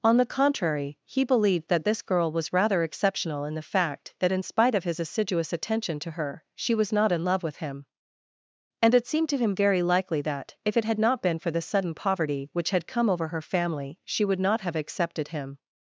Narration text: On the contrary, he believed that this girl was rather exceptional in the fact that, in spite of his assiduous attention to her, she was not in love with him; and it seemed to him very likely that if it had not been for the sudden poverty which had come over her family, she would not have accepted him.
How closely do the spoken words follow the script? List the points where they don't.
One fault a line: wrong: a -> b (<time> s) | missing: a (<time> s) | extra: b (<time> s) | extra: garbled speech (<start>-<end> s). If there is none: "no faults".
no faults